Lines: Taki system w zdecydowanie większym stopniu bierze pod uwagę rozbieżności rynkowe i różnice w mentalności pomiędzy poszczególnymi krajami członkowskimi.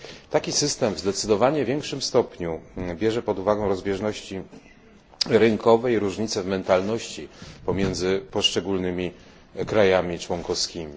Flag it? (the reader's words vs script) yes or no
no